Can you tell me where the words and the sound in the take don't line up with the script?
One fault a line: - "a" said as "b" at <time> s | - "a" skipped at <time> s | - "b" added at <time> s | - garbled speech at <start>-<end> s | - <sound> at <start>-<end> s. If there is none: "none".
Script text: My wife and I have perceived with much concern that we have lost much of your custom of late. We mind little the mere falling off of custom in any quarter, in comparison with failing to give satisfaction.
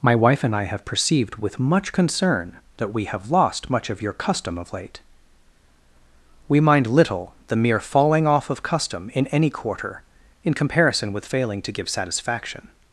none